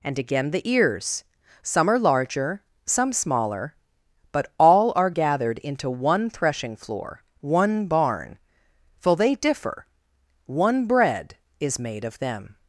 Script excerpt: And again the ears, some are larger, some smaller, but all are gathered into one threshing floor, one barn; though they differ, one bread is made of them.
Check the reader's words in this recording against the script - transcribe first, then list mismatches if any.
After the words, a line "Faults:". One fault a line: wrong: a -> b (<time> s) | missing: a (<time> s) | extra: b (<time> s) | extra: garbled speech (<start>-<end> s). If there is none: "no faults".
And again the ears, some are larger, some smaller, but all are gathered into one threshing floor, one barn; for they differ, one bread is made of them.
Faults:
wrong: though -> for (9.0 s)